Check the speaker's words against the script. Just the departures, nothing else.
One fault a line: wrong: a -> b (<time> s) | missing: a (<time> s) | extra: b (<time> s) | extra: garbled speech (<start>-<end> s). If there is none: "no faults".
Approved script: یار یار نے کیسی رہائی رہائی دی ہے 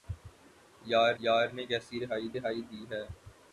no faults